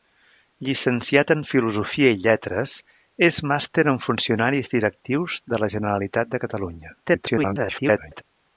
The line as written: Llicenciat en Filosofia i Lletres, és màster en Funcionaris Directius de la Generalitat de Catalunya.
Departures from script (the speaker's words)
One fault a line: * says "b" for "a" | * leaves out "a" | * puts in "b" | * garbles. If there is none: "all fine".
* garbles